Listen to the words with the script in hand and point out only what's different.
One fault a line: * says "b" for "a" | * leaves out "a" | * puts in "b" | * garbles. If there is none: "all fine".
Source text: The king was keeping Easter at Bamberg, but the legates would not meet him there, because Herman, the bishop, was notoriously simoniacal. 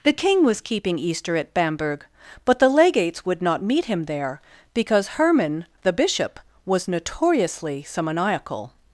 all fine